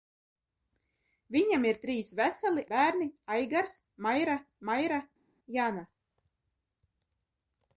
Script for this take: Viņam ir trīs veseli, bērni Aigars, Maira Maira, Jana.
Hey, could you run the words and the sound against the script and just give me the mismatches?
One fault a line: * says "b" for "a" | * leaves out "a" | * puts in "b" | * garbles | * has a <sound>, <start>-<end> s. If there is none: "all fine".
all fine